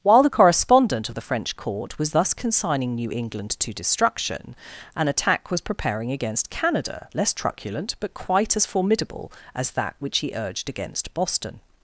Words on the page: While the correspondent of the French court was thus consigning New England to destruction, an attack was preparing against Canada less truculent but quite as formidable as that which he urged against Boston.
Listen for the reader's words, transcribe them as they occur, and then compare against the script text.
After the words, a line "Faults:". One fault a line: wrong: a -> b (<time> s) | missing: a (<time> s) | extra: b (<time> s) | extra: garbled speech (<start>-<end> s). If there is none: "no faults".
While the correspondent of the French court was thus consigning New England to destruction, an attack was preparing against Canada less truculent but quite as formidable as that which he urged against Boston.
Faults:
no faults